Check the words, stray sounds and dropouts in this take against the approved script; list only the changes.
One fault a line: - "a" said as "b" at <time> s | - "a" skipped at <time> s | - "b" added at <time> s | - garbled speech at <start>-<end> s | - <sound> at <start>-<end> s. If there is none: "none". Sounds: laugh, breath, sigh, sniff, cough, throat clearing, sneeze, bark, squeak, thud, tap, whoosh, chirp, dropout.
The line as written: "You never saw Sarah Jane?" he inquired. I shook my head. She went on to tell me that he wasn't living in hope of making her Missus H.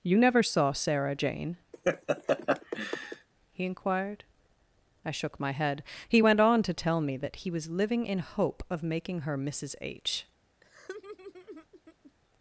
- laugh at 1.7-3.3 s
- "She" said as "He" at 6.1 s
- "wasn't" said as "was" at 7.5 s
- laugh at 10.6-12.1 s